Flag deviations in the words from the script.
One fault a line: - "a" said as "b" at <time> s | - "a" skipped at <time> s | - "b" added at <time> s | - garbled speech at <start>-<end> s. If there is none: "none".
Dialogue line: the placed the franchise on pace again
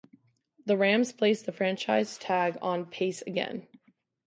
- "rams" added at 0.8 s
- "tag" added at 2.2 s